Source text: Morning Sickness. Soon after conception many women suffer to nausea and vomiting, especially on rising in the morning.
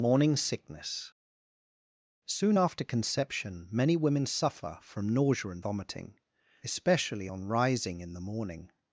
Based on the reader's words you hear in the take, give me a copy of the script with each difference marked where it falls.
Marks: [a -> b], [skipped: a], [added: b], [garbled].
Morning Sickness. Soon after conception many women suffer [to -> from] nausea and vomiting, especially on rising in the morning.